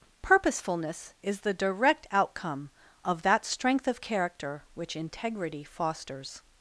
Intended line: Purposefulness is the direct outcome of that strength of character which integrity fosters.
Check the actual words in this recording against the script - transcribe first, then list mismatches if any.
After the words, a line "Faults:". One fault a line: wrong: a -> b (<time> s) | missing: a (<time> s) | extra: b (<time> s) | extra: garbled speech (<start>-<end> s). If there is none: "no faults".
Purposefulness is the direct outcome of that strength of character which integrity fosters.
Faults:
no faults